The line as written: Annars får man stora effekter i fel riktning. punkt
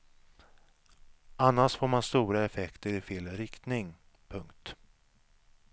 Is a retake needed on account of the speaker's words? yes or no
no